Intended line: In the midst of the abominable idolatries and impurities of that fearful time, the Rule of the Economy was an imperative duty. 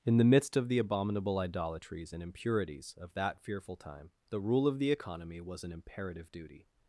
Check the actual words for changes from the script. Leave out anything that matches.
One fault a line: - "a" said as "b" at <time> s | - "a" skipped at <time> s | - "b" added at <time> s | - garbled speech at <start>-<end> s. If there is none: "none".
none